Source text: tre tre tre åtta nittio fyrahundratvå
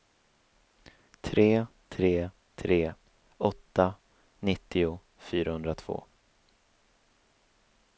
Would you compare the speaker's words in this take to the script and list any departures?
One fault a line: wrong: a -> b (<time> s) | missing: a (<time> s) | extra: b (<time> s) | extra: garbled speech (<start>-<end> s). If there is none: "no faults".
no faults